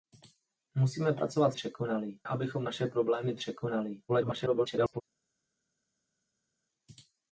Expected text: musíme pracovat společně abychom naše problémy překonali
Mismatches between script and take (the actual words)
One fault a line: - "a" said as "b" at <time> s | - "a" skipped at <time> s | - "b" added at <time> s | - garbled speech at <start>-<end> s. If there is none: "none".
- "společně" said as "překonali" at 1.5 s
- garbled speech at 4.1-5.0 s